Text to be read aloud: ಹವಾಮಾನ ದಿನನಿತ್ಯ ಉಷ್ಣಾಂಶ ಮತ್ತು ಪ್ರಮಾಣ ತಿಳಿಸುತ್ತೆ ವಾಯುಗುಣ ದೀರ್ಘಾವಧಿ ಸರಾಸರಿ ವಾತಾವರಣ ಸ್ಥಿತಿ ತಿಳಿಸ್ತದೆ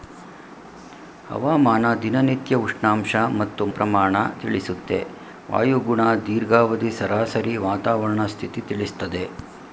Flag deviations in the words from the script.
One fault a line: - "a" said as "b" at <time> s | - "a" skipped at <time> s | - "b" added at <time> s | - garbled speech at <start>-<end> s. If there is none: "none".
none